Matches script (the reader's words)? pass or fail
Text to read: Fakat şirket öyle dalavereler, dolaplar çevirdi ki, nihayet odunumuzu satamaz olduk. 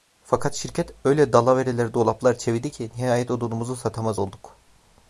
pass